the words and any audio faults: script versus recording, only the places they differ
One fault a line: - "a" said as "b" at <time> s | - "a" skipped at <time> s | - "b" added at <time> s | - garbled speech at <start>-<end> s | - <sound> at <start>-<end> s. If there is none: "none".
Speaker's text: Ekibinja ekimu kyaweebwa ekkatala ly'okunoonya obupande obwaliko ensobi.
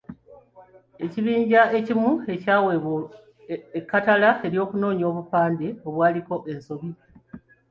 none